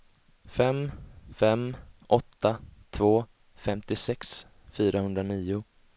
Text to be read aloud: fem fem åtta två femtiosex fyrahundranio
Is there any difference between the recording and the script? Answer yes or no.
no